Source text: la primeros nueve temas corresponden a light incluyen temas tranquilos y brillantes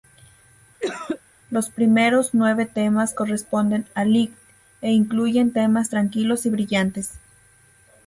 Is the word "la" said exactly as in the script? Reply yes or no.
no